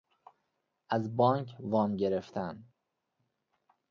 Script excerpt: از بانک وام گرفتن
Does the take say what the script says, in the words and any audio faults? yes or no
yes